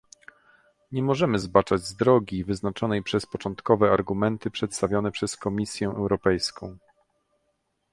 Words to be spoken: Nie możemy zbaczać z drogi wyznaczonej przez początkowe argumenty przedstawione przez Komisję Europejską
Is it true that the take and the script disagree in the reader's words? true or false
false